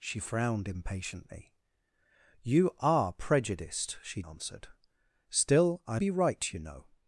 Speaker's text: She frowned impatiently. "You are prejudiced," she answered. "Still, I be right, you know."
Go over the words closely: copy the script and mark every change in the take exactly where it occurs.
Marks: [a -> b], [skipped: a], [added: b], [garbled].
She frowned impatiently. "You are prejudiced," she answered. "Still, I be right, you know."